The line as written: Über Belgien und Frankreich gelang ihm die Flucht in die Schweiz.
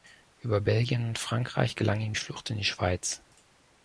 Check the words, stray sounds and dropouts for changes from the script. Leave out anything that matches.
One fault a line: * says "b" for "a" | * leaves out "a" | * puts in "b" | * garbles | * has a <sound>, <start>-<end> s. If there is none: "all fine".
* leaves out "die"